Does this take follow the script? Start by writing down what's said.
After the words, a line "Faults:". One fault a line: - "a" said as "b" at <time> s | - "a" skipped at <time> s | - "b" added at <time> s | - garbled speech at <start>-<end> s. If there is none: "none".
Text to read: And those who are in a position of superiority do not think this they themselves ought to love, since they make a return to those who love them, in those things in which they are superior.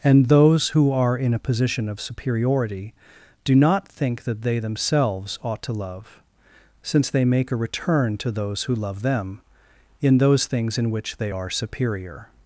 And those who are in a position of superiority do not think that they themselves ought to love, since they make a return to those who love them, in those things in which they are superior.
Faults:
- "this" said as "that" at 4.2 s